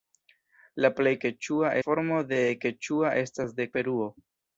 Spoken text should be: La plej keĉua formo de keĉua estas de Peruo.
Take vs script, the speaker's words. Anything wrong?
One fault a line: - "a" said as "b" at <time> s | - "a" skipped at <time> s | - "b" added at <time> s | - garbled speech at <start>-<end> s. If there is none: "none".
none